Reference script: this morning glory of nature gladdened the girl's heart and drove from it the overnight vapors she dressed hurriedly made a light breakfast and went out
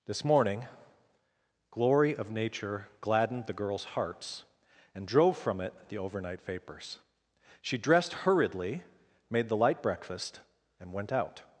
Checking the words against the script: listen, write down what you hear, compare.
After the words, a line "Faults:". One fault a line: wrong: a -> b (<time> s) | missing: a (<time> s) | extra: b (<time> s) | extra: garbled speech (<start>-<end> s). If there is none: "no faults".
this morning glory of nature gladdened the girl's hearts and drove from it the overnight vapors she dressed hurriedly made the light breakfast and went out
Faults:
wrong: heart -> hearts (3.8 s)
wrong: a -> the (9.5 s)